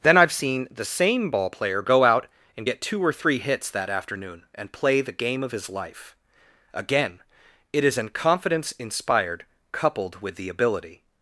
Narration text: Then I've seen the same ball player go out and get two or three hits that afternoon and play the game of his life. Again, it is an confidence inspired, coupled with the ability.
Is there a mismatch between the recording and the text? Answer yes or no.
no